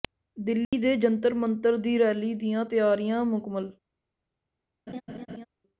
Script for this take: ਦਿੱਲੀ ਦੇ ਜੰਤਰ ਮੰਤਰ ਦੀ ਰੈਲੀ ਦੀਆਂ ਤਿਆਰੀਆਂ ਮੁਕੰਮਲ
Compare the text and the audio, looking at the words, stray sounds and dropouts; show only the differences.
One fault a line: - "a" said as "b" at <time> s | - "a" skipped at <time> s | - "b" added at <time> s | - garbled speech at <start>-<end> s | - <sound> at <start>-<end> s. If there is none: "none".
- dropout at 0.6-0.7 s
- laugh at 4.9-5.5 s